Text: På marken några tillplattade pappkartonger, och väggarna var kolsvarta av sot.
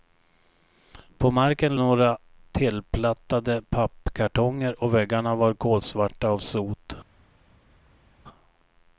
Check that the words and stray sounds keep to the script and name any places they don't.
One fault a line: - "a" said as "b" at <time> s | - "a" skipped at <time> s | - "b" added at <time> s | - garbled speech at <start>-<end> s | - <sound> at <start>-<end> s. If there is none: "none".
none